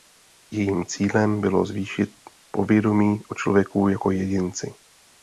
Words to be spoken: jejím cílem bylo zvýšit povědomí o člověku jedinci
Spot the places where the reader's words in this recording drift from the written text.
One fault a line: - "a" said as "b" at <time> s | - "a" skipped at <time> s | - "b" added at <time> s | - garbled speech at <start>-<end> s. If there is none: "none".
- "jako" added at 3.9 s